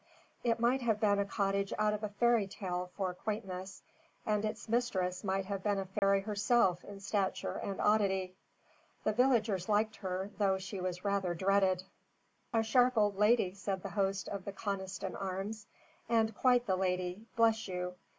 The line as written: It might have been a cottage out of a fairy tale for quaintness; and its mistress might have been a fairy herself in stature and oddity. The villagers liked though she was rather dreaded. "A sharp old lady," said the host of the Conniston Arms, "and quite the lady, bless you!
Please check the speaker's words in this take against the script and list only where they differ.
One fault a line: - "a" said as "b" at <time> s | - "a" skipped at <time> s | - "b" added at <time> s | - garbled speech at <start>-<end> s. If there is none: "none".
- "her" added at 10.0 s